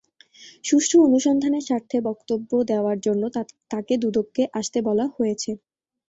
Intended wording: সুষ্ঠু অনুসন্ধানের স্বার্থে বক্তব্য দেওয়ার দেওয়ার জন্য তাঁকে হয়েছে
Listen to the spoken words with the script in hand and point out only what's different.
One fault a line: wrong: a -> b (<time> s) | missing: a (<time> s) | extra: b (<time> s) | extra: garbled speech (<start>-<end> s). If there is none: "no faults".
missing: দেওয়ার (3.0 s)
extra: দুদকে আসতে বলা (4.0 s)